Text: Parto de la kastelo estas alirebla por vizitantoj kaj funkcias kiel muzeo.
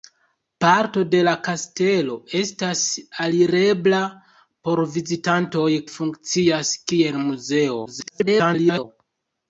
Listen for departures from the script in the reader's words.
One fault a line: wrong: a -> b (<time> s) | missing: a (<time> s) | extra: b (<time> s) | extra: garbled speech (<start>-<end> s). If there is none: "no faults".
missing: kaj (5.7 s)
extra: garbled speech (7.9-8.8 s)